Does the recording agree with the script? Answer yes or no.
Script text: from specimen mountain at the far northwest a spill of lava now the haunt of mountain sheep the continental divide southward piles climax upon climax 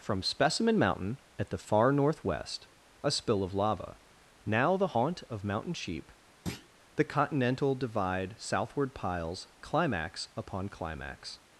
yes